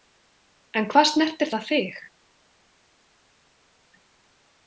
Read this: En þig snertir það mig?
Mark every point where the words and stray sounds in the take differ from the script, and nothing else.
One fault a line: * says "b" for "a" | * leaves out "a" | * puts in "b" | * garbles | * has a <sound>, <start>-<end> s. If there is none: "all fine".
* says "hvað" for "þig"
* says "þig" for "mig"